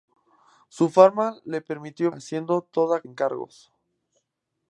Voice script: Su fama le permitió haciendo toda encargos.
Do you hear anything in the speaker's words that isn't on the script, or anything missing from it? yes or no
no